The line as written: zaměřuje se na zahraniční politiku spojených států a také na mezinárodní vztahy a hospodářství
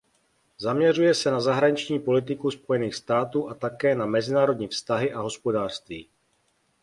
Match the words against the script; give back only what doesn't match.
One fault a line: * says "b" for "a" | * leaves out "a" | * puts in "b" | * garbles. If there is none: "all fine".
all fine